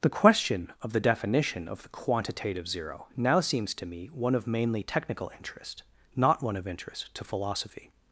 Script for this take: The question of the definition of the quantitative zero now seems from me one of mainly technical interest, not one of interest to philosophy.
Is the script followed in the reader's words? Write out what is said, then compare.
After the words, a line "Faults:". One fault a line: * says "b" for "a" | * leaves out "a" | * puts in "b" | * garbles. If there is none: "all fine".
The question of the definition of the quantitative zero now seems to me one of mainly technical interest, not one of interest to philosophy.
Faults:
* says "to" for "from"